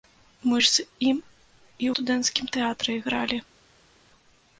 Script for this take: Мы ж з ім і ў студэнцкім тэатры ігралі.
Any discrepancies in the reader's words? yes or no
yes